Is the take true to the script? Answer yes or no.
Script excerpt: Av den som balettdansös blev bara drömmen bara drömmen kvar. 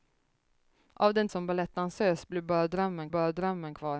yes